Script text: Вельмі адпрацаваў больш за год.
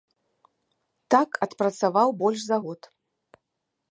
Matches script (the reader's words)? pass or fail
fail